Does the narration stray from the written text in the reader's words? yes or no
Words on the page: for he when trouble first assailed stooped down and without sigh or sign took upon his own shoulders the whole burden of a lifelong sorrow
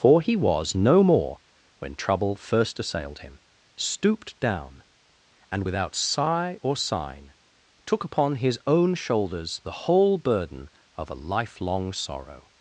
yes